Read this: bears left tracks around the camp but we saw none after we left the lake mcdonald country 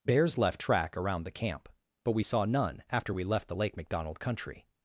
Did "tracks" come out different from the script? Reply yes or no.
yes